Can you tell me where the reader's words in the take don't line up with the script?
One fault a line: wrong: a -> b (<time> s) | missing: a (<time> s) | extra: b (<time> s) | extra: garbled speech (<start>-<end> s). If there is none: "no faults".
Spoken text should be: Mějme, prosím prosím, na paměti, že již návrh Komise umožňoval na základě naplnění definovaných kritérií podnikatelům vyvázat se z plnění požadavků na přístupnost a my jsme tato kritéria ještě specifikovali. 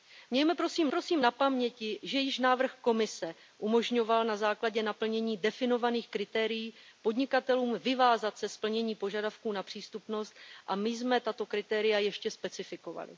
no faults